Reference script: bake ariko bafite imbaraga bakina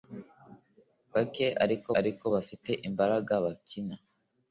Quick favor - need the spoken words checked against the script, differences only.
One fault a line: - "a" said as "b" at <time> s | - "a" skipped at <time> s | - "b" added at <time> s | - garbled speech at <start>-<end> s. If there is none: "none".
- "ariko" added at 2.0 s